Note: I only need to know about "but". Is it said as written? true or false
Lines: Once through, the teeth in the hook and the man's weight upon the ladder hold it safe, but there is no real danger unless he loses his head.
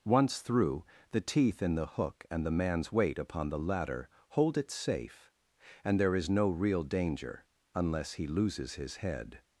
false